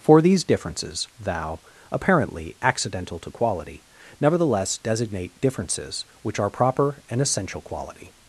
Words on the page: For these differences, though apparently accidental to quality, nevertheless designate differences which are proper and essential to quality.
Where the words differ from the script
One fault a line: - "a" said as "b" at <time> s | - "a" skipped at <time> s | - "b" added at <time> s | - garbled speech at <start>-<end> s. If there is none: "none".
- "though" said as "thou" at 1.2 s
- "to" skipped at 7.6 s